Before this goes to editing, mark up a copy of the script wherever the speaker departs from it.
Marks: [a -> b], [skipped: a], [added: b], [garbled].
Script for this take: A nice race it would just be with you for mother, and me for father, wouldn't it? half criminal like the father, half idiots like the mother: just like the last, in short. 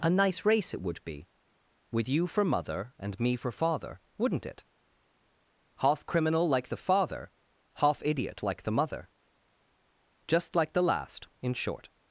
A nice race it would [skipped: just] be with you for mother, and me for father, wouldn't it? half criminal like the father, half [idiots -> idiot] like the mother: just like the last, in short.